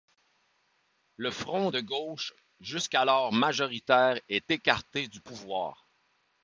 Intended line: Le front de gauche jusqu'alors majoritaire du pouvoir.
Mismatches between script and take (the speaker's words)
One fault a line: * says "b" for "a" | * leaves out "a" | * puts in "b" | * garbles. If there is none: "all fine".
* puts in "est écarté"